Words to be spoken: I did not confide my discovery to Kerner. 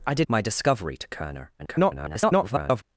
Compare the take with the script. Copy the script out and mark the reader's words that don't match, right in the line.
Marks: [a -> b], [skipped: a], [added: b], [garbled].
I did [skipped: not confide] my discovery to Kerner. [garbled]